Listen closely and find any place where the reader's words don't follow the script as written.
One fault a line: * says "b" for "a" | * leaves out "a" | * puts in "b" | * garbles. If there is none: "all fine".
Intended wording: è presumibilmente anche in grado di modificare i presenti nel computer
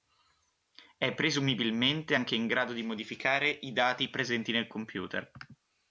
* puts in "dati"